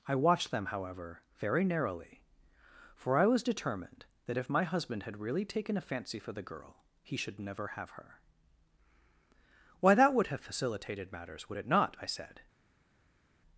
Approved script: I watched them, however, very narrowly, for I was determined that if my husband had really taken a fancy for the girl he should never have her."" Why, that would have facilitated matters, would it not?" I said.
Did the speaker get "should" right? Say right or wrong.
right